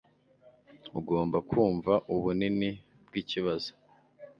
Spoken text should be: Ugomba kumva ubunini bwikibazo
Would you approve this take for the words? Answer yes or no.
yes